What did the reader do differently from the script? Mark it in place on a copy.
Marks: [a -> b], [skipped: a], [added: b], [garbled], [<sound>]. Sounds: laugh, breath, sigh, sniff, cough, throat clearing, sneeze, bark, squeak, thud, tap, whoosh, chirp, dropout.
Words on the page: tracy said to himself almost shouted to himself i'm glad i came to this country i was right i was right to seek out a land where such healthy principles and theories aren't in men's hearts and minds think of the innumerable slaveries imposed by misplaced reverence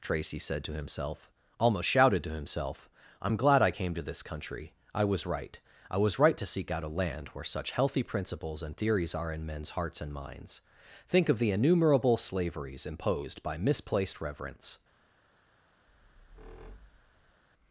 tracy said to himself almost shouted to himself i'm glad i came to this country i was right i was right to seek out a land where such healthy principles and theories [aren't -> are] in men's hearts and minds think of the innumerable slaveries imposed by misplaced reverence [squeak]